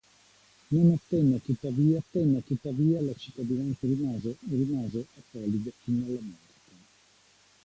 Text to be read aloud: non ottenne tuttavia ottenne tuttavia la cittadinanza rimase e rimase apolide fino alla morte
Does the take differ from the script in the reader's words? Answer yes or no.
no